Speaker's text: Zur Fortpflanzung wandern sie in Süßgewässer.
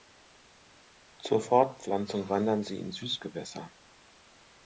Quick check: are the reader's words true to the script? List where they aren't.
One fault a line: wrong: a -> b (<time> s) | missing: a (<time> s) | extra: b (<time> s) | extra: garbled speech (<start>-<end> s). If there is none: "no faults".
no faults